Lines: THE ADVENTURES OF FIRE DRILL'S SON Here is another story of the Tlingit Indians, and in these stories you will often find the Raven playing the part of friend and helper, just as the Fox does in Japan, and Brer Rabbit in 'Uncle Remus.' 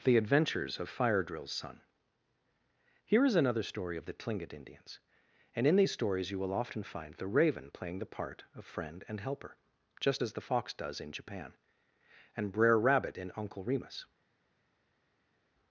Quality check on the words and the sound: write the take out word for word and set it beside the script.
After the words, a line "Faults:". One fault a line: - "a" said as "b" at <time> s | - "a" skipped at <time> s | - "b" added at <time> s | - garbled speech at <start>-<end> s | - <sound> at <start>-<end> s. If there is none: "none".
THE ADVENTURES OF FIRE DRILL'S SON Here is another story of the Tlingit Indians, and in these stories you will often find the Raven playing the part of friend and helper, just as the Fox does in Japan, and Brer Rabbit in 'Uncle Remus.'
Faults:
none